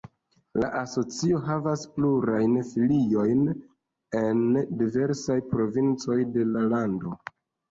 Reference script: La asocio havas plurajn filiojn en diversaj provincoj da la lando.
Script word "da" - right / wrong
wrong